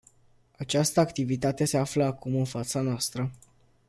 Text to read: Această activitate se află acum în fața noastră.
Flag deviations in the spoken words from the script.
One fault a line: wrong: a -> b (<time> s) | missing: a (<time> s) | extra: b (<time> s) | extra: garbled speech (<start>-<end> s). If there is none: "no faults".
no faults